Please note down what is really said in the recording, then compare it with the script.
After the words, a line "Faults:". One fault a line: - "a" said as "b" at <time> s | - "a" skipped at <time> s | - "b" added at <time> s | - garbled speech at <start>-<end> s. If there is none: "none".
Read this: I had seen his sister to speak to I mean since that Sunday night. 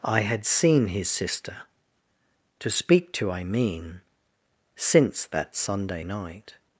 I had seen his sister to speak to I mean since that Sunday night.
Faults:
none